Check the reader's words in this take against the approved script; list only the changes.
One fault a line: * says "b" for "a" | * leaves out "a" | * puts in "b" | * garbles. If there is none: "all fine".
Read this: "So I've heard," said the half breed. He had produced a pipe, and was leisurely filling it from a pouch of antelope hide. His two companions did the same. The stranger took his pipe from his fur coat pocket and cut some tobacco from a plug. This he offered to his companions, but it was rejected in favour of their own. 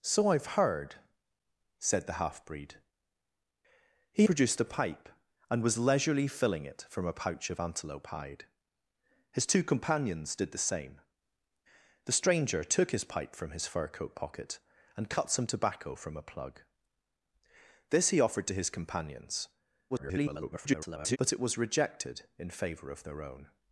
* leaves out "had"
* garbles